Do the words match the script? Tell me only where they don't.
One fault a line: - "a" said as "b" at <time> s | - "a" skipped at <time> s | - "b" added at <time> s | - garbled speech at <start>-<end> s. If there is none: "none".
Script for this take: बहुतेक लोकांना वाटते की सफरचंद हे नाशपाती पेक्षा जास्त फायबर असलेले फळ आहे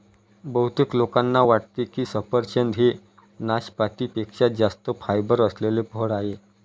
none